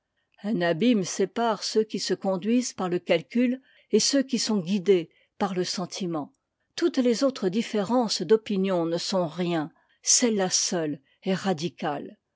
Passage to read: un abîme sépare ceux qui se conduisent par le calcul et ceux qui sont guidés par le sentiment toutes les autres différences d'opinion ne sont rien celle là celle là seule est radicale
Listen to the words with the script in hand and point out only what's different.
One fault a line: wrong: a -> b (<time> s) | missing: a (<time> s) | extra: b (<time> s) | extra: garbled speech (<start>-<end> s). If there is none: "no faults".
missing: celle là (10.5 s)